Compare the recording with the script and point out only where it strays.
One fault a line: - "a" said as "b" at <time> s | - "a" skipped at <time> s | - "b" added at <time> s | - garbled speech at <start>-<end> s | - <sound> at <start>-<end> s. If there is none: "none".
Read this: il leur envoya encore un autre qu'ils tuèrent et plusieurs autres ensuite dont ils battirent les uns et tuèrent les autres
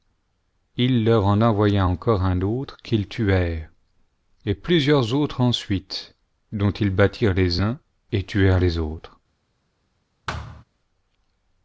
- "en" added at 1.3 s
- thud at 10.3-10.6 s